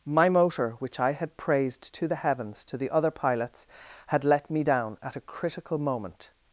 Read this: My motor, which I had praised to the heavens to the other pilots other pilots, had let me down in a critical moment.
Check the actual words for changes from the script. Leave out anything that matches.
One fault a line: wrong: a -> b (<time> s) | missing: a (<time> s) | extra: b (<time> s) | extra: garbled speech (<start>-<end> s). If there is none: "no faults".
missing: other pilots (3.7 s)
wrong: in -> at (5.0 s)